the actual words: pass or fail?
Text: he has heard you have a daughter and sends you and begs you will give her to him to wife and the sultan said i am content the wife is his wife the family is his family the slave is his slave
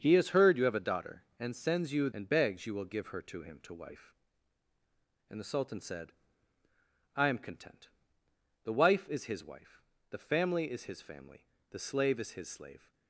pass